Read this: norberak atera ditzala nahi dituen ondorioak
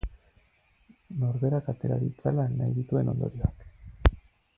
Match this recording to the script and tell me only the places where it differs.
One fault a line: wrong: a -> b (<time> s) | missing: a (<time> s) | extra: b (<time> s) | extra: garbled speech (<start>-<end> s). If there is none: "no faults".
no faults